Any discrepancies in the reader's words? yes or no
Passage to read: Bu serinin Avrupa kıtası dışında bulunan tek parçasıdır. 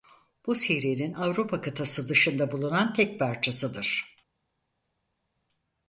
no